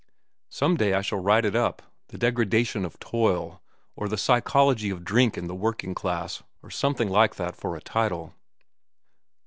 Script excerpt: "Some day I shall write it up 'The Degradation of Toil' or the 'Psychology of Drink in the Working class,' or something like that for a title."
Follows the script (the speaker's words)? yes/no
yes